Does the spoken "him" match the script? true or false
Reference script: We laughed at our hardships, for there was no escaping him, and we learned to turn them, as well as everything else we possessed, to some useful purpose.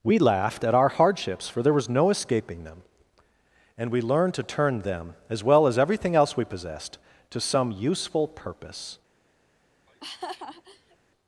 false